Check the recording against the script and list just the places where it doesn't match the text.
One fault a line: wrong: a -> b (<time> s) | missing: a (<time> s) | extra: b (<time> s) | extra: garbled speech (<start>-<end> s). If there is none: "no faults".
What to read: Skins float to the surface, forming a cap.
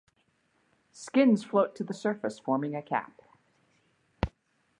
no faults